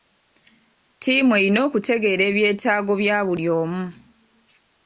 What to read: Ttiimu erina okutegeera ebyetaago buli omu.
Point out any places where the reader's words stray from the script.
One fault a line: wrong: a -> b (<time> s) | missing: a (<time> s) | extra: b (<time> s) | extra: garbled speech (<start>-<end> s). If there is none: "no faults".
extra: bya (3.0 s)